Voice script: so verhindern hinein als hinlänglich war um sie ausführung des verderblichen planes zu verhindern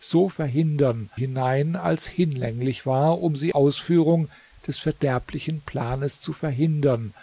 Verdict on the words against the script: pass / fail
pass